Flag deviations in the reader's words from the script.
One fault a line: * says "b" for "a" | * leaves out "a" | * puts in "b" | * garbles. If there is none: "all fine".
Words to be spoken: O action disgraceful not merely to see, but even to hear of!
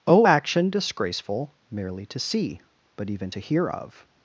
* leaves out "not"